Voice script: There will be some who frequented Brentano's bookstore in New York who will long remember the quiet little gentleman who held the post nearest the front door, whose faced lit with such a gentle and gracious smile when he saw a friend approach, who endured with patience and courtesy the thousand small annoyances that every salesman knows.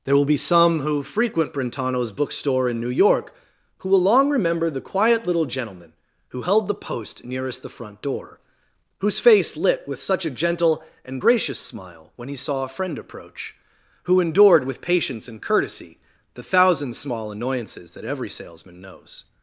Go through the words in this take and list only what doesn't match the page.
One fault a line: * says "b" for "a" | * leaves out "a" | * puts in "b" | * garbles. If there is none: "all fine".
* says "frequent" for "frequented"
* says "face" for "faced"